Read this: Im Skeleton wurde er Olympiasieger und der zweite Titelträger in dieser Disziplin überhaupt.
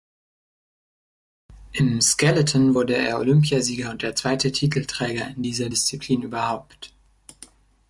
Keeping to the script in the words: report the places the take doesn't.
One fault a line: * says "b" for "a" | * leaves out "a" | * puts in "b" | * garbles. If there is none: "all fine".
all fine